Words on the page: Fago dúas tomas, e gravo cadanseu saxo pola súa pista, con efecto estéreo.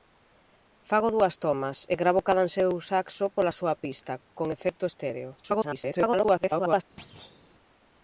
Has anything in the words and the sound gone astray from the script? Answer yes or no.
yes